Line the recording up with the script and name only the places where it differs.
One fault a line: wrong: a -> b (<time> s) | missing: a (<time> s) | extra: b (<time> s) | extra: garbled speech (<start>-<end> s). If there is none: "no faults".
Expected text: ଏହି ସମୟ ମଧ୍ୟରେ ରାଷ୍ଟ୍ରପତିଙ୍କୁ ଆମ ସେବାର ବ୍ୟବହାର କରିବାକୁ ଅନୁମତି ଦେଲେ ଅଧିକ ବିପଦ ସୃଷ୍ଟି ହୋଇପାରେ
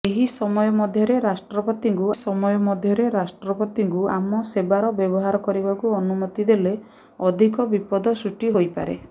extra: ସମୟ ମଧ୍ୟରେ ରାଷ୍ଟ୍ରପତିଙ୍କୁ (2.1 s)